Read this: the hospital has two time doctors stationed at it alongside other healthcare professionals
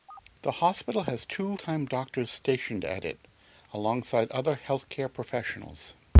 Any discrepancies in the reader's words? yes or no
no